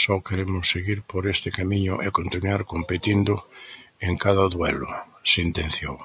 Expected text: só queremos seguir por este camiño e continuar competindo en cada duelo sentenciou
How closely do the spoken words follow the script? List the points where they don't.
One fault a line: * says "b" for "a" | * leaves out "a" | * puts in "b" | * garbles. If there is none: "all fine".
all fine